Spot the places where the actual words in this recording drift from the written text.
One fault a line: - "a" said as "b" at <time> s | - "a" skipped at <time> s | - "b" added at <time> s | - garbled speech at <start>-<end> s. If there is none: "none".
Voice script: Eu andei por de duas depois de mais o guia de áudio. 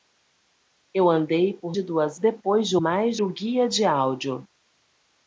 none